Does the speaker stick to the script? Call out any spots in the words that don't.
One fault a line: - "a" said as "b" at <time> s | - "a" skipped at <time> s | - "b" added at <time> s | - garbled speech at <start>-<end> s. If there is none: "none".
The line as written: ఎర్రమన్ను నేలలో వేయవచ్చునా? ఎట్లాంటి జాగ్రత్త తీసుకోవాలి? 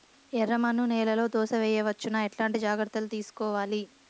- "దోస" added at 1.3 s
- "లు" added at 3.0 s